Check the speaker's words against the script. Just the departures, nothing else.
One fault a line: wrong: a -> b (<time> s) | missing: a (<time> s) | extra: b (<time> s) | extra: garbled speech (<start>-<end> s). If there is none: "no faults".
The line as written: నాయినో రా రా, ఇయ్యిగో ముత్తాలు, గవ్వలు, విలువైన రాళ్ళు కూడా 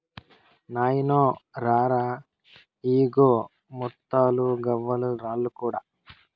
missing: విలువైన (5.1 s)